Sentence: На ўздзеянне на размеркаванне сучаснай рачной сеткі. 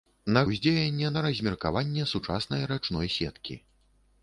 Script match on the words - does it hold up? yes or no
yes